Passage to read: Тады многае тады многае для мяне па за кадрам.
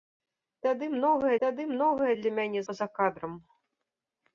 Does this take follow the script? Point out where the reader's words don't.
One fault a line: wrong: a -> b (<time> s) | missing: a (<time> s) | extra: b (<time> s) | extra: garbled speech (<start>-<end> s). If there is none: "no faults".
no faults